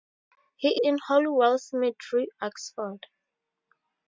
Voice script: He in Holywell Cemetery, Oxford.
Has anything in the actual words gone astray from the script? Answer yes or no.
no